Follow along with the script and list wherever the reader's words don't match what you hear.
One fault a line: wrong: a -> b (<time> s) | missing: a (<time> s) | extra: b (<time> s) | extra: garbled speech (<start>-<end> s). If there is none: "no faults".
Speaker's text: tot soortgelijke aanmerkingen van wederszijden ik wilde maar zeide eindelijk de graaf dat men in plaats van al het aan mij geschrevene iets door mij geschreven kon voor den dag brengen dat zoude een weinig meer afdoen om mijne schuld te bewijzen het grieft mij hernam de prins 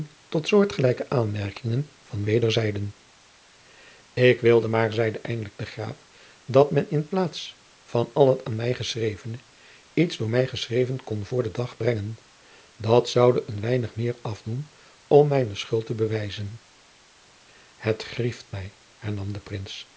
no faults